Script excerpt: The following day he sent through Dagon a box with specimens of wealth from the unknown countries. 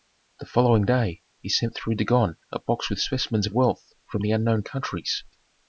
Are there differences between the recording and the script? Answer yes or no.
no